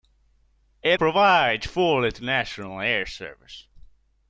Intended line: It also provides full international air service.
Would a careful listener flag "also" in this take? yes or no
yes